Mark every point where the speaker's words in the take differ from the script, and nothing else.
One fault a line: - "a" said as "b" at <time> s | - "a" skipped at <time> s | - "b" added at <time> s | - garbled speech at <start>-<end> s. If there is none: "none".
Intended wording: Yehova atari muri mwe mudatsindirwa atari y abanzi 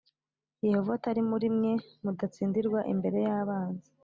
- "atari" said as "imbere" at 2.9 s